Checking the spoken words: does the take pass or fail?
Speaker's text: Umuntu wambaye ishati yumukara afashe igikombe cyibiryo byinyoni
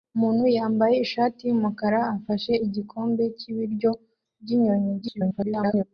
fail